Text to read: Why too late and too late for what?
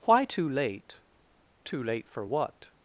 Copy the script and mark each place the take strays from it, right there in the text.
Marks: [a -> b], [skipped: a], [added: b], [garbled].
Why too late [skipped: and] too late for what?